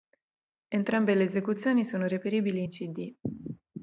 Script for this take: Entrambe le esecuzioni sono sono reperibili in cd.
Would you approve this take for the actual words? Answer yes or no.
no